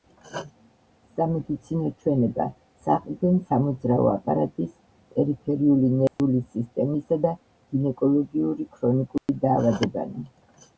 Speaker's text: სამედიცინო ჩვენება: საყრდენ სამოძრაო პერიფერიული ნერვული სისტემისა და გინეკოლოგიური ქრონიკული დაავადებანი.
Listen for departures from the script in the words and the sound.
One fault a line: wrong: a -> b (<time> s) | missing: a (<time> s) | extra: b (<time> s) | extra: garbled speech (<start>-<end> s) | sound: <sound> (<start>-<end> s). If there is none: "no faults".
extra: აპარატის (4.1 s)
sound: dropout (6.1-6.2 s)
sound: dropout (9.2-9.3 s)